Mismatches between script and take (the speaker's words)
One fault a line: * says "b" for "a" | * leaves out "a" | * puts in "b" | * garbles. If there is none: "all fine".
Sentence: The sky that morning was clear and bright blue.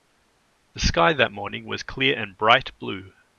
all fine